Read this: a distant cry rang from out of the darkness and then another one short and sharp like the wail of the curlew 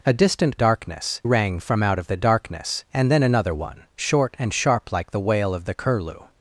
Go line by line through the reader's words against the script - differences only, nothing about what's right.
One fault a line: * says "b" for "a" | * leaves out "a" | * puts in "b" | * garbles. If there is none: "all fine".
* says "darkness" for "cry"